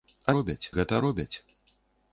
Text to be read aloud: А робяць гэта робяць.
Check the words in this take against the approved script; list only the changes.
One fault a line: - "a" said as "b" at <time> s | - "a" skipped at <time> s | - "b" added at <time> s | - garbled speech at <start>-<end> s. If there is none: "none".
none